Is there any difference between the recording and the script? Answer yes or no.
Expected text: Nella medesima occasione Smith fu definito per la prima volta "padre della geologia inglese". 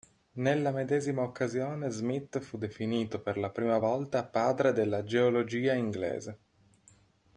no